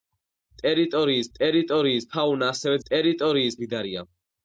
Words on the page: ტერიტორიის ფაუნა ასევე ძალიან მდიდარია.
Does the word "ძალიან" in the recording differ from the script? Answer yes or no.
yes